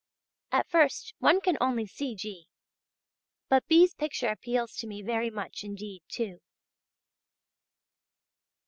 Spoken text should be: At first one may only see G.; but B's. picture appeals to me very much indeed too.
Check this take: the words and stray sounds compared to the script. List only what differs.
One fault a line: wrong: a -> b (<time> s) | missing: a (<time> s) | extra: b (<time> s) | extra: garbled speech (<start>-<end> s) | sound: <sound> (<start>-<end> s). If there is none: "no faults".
wrong: may -> can (1.4 s)